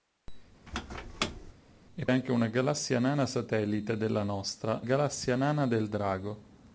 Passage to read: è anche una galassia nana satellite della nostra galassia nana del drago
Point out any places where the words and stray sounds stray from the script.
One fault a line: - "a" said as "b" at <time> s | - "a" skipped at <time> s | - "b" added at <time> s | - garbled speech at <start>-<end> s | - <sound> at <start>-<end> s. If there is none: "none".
- squeak at 0.7-1.5 s